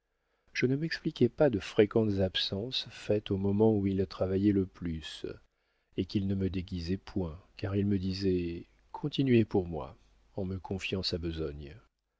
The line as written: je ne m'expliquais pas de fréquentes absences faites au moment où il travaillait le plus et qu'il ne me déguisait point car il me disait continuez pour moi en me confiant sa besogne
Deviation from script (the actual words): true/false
false